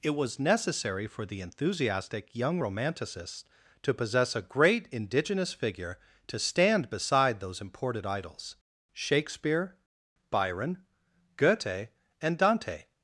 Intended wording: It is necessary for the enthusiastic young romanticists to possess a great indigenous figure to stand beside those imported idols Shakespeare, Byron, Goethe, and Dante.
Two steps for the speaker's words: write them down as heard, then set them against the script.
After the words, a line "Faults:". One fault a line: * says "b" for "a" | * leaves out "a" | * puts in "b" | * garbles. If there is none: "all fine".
It was necessary for the enthusiastic young romanticists to possess a great indigenous figure to stand beside those imported idols Shakespeare, Byron, Goethe, and Dante.
Faults:
* says "was" for "is"